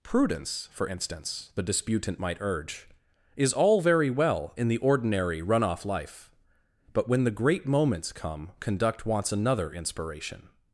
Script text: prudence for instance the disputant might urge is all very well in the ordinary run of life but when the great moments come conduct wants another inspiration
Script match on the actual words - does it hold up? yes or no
no